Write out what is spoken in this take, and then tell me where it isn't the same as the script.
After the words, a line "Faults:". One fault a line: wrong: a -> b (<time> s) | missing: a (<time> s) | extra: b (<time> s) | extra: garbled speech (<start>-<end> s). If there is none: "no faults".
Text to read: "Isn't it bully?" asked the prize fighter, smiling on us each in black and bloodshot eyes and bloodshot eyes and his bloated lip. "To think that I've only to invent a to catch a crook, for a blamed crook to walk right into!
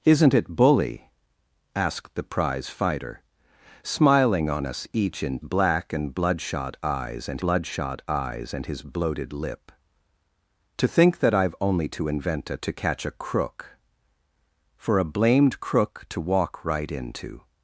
"Isn't it bully?" asked the prize fighter, smiling on us each in black and bloodshot eyes and bloodshot eyes and his bloated lip. "To think that I've only to invent a to catch a crook, for a blamed crook to walk right into!
Faults:
no faults